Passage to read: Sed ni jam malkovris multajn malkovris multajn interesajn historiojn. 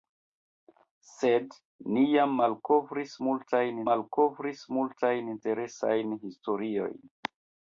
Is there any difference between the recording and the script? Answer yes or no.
no